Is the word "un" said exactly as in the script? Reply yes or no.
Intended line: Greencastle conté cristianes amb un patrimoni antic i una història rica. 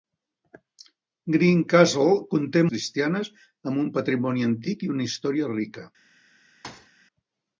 yes